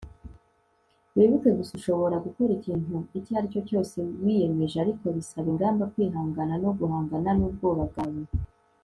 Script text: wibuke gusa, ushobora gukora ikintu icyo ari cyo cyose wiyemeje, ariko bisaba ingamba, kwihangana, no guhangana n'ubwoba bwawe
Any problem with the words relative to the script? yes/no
no